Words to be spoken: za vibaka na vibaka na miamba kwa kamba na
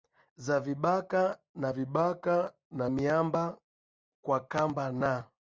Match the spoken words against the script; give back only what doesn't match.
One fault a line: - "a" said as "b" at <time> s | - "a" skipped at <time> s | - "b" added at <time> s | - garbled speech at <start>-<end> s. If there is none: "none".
none